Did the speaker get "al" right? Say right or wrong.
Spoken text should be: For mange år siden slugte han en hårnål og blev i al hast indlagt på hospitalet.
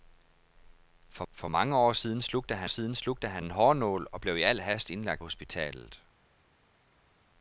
right